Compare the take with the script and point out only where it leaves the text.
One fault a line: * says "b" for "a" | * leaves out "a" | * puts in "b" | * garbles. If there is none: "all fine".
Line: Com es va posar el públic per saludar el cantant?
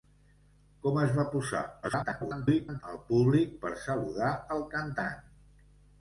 * garbles